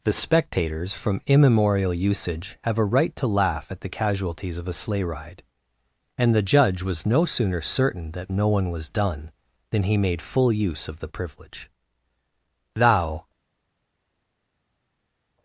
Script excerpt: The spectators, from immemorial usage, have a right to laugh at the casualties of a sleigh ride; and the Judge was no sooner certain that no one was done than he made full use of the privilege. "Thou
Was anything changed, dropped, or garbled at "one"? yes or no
no